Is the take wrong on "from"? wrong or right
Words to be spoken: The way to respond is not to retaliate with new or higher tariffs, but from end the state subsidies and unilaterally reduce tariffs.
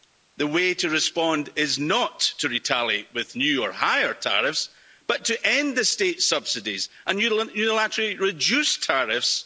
wrong